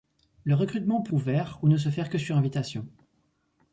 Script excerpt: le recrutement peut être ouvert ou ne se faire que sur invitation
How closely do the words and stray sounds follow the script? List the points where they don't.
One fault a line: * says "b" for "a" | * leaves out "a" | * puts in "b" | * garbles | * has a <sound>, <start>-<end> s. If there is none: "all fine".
* leaves out "être"